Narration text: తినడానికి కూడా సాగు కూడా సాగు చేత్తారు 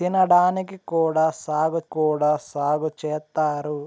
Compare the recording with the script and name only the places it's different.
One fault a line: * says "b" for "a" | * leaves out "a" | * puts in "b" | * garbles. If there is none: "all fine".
all fine